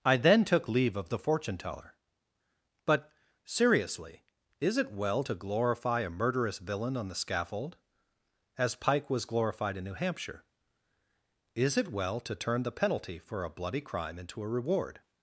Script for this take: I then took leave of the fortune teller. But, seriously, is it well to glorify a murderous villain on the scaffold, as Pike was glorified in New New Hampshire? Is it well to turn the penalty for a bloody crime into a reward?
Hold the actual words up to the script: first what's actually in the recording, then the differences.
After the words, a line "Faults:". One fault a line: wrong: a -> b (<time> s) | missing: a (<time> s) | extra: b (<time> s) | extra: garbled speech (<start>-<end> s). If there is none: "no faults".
I then took leave of the fortune teller. But, seriously, is it well to glorify a murderous villain on the scaffold, as Pike was glorified in New Hampshire? Is it well to turn the penalty for a bloody crime into a reward?
Faults:
missing: New (9.9 s)